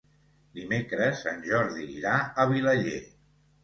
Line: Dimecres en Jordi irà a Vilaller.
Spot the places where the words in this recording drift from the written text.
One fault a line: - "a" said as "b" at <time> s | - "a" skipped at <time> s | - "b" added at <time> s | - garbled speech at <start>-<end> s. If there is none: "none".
none